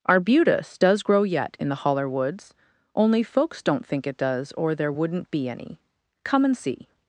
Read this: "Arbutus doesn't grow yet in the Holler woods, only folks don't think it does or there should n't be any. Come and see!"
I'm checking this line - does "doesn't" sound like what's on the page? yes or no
no